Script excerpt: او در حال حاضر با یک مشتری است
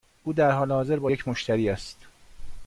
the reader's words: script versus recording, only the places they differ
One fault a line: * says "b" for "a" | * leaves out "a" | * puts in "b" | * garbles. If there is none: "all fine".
all fine